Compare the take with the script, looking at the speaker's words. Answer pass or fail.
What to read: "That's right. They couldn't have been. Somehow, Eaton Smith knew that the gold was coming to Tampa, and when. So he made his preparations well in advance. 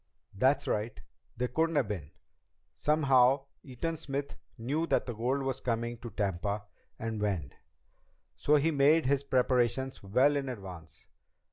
pass